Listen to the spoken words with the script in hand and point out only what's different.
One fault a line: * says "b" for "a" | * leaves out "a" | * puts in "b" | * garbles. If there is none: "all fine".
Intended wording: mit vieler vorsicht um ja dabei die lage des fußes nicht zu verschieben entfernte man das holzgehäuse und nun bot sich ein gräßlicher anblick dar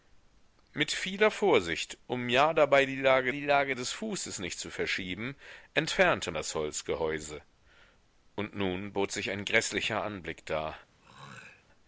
* puts in "die lage"
* leaves out "man"